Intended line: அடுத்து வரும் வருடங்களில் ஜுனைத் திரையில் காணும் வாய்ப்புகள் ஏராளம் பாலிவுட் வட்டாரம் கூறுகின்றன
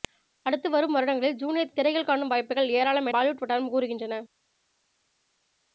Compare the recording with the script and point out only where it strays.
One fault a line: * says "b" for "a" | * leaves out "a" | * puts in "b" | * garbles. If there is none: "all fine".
all fine